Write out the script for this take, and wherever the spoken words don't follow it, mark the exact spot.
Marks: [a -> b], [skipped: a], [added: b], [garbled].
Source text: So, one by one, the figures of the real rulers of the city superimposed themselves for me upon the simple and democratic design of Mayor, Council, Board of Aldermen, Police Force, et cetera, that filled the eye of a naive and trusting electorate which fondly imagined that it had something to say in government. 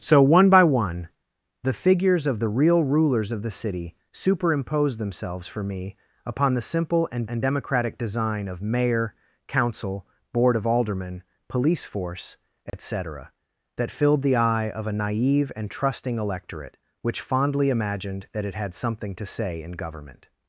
So, one by one, the figures of the real rulers of the city superimposed themselves for me upon the simple and [added: and] democratic design of Mayor, Council, Board of Aldermen, Police Force, et cetera, that filled the eye of a naive and trusting electorate which fondly imagined that it had something to say in government.